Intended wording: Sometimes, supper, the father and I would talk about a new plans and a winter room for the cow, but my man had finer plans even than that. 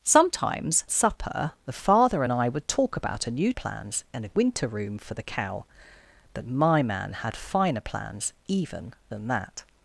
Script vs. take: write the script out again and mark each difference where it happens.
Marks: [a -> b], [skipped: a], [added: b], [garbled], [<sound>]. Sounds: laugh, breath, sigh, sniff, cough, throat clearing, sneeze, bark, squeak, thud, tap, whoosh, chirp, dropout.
Sometimes, supper, the father and I would talk about a new plans and a winter room for the cow, but my man had finer plans even than that.